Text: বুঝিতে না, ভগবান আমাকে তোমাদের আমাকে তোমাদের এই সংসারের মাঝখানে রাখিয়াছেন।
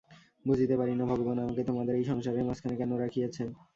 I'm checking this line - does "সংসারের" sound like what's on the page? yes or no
yes